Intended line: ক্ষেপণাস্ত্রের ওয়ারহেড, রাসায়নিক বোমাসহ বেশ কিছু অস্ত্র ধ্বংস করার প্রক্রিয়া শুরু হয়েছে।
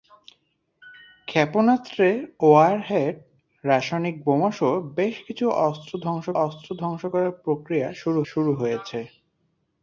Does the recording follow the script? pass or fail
fail